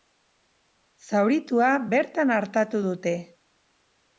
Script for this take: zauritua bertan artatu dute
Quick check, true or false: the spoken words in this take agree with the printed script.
true